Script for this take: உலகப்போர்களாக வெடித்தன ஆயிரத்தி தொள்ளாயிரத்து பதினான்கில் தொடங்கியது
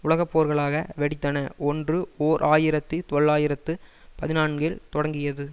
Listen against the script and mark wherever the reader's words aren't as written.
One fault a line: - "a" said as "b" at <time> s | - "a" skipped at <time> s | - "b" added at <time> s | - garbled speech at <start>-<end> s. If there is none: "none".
- "ஒன்று ஓர்" added at 1.6 s